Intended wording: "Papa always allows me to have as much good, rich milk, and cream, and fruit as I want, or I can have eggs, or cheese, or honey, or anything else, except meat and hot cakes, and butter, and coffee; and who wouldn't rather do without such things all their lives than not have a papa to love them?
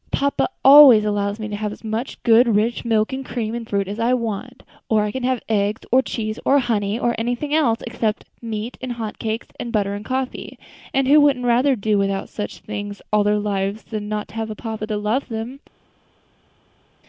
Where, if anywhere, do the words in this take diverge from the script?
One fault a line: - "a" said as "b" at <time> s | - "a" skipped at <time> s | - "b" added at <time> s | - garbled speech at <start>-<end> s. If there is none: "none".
none